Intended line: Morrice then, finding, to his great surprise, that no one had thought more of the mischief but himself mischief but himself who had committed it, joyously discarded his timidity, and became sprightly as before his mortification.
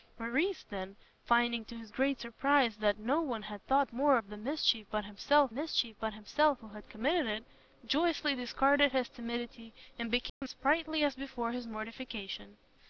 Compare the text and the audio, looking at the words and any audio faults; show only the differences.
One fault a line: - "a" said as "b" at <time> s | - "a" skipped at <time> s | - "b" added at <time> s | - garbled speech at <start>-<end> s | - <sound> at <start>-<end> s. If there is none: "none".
- dropout at 10.3-10.4 s